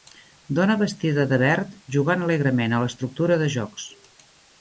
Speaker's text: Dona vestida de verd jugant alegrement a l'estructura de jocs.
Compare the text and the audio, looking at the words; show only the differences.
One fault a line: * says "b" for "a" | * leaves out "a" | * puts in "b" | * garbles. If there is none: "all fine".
all fine